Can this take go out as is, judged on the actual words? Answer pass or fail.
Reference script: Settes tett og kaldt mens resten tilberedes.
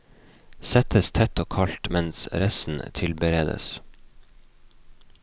pass